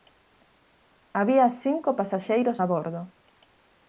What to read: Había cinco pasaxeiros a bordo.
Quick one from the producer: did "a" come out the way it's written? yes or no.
yes